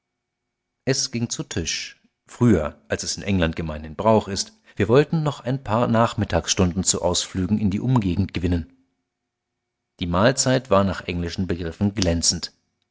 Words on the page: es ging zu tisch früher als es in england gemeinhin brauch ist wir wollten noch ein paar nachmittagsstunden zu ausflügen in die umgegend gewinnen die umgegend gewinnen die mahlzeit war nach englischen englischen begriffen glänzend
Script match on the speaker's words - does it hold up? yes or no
no